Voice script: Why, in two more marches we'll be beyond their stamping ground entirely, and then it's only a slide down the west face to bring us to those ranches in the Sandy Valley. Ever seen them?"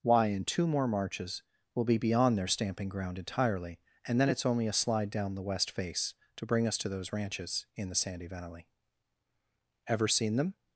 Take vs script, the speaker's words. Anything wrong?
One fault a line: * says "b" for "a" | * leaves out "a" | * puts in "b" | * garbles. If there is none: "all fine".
all fine